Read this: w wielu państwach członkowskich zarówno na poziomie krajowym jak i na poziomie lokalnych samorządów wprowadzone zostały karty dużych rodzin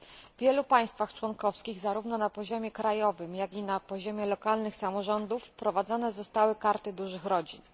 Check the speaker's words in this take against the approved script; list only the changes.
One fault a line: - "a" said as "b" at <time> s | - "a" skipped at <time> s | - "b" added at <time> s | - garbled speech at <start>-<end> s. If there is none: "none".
none